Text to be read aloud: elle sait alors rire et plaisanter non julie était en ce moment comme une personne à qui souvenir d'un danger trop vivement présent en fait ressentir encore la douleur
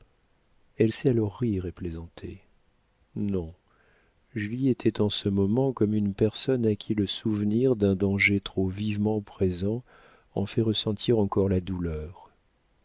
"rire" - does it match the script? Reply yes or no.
yes